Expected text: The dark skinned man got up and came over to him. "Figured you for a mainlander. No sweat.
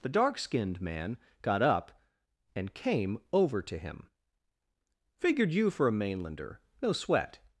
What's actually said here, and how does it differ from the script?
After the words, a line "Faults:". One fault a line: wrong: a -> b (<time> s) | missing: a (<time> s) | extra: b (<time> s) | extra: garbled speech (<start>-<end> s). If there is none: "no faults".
The dark skinned man got up and came over to him. "Figured you for a mainlander. No sweat.
Faults:
no faults